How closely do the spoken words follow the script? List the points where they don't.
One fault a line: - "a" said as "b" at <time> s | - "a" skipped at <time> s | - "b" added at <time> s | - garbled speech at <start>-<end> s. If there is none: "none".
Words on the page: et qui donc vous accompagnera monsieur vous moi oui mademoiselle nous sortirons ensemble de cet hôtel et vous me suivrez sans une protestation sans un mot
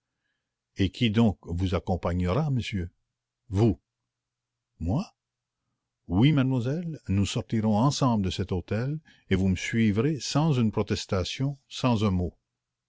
none